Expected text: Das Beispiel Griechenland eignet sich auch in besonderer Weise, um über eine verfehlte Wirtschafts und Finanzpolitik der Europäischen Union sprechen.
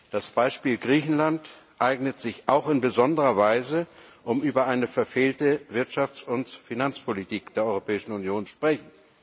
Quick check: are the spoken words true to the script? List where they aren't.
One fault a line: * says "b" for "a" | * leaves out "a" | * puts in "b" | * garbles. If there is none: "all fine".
all fine